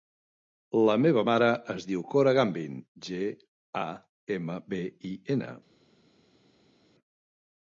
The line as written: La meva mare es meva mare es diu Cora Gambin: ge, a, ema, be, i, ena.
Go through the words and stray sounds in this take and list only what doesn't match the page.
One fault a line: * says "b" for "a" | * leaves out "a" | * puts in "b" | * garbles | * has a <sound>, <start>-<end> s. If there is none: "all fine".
* leaves out "meva mare es"